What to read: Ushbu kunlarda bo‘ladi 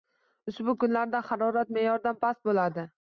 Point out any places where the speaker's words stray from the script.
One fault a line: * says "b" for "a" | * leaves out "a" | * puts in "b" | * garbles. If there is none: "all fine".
* puts in "harorat me'yordan past"